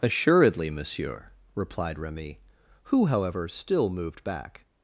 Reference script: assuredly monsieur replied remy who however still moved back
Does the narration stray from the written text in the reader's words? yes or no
no